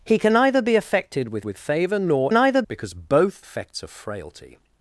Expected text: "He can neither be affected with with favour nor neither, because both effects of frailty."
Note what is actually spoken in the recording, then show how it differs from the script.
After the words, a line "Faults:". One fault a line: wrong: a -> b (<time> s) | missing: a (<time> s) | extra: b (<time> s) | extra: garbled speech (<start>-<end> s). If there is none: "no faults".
"He can neither be affected with with favour nor neither, because both effects of frailty."
Faults:
no faults